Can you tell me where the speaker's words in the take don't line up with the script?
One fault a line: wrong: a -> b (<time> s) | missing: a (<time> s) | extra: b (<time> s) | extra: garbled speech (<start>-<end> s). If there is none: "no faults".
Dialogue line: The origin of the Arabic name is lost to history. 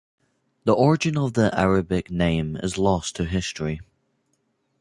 no faults